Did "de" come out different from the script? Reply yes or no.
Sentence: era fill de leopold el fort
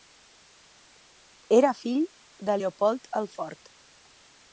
no